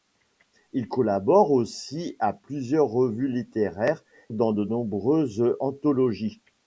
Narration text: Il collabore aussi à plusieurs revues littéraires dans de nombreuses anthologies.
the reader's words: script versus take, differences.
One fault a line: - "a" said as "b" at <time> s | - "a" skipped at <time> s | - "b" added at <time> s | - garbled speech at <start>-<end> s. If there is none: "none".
none